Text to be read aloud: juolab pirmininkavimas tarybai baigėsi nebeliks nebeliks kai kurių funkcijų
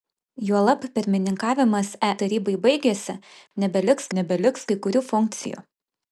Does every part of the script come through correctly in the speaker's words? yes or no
yes